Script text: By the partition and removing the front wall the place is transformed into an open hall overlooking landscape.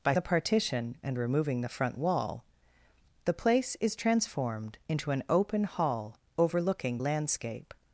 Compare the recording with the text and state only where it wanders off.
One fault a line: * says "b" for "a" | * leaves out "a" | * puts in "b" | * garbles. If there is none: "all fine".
all fine